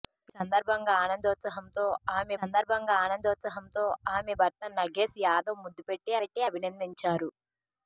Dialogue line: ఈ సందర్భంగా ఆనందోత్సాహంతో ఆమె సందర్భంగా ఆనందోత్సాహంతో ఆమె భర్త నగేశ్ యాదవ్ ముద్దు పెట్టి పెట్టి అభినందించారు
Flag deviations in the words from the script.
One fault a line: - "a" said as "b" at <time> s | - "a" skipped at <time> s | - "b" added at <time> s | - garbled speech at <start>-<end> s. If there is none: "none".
none